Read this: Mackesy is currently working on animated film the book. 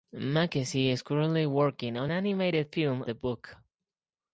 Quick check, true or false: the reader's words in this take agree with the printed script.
true